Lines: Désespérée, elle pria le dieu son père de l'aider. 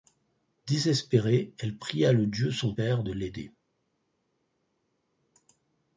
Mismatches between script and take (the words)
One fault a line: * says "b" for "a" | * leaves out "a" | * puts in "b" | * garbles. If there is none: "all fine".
all fine